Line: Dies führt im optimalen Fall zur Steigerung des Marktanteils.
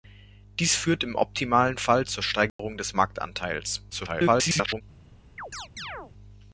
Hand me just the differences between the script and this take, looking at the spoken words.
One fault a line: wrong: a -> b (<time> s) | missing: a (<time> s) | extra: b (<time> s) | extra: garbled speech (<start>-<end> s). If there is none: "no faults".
extra: garbled speech (3.9-4.8 s)